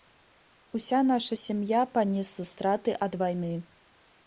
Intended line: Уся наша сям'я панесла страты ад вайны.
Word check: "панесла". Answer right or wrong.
right